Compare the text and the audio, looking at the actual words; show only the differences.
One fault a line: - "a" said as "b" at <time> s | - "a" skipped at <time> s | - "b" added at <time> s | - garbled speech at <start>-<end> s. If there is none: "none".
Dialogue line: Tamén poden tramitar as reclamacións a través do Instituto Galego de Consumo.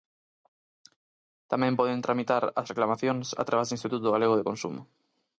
none